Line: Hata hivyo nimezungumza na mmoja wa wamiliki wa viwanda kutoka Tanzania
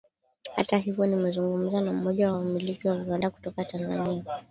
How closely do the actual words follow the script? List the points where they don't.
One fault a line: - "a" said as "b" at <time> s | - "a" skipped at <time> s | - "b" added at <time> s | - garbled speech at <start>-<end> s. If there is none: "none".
none